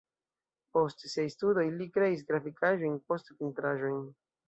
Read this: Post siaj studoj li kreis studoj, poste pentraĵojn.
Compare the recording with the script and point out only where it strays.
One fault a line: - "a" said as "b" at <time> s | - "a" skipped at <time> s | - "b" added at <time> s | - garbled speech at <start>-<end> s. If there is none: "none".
- "studoj" said as "grafikaĵojn" at 2.3 s